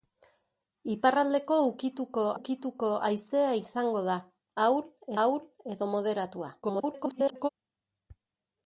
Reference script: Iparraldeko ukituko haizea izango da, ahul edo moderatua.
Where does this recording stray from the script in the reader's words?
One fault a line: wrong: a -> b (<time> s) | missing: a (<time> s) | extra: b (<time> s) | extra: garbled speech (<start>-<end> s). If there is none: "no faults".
extra: ukituko (2.4 s)
extra: ahul (5.2 s)
extra: garbled speech (6.6-7.5 s)